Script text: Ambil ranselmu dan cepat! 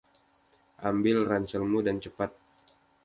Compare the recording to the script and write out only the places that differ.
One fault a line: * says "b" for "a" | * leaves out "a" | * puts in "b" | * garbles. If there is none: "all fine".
all fine